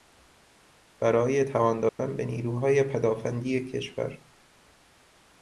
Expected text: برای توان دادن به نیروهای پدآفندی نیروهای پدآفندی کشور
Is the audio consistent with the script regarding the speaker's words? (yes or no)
no